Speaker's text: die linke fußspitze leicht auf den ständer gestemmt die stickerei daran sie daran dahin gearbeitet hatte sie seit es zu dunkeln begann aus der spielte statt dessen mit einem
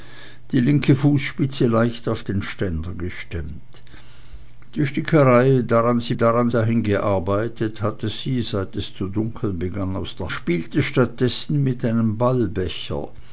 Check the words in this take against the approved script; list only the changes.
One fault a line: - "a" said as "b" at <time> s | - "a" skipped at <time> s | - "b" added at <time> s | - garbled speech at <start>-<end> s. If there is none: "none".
none